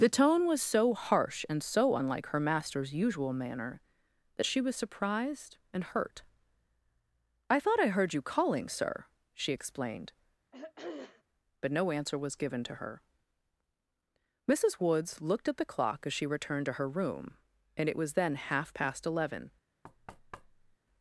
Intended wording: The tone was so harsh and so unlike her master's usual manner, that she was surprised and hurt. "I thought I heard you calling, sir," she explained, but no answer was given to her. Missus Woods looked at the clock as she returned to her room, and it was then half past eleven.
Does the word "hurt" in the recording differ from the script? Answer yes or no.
no